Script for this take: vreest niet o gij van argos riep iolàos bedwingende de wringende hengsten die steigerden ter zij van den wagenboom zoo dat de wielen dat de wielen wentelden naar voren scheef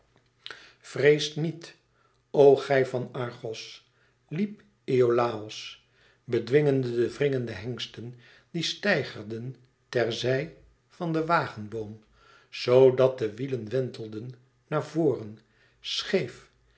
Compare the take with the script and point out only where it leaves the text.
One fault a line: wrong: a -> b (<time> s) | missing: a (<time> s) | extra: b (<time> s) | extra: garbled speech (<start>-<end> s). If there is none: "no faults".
missing: dat de wielen (13.7 s)